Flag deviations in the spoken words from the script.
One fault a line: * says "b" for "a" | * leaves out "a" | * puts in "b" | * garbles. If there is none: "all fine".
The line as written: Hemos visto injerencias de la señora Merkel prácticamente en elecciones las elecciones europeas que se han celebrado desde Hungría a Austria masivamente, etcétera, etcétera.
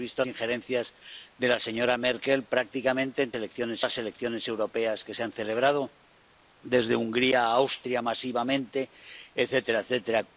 all fine